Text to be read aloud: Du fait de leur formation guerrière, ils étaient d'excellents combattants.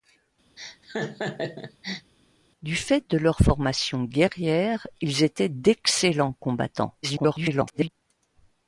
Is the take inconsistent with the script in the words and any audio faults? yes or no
yes